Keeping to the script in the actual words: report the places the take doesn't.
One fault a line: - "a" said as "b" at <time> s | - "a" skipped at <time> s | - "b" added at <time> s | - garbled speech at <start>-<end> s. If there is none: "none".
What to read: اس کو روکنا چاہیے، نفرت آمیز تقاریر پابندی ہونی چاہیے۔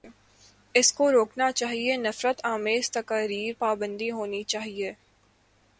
none